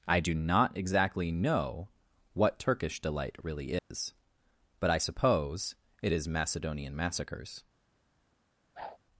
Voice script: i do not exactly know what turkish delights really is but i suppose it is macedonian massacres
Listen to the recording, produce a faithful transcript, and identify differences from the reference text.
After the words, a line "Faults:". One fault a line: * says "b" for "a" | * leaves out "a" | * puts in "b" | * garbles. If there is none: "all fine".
i do not exactly know what turkish delight really is but i suppose it is macedonian massacres
Faults:
* says "delight" for "delights"